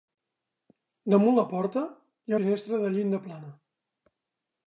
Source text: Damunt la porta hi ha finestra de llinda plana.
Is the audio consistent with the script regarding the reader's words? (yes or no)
yes